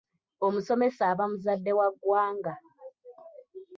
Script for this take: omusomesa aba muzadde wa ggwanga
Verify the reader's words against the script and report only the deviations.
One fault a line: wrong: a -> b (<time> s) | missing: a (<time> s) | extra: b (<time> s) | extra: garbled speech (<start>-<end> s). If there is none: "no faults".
no faults